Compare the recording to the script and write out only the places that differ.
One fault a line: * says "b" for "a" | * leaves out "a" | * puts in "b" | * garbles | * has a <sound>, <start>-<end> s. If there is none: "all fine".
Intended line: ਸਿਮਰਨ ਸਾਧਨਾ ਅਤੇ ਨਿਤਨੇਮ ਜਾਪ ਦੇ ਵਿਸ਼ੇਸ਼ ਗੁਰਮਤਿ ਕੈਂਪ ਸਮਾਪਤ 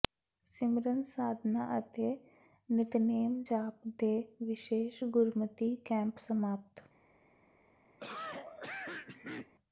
* has a cough, 8.0-9.5 s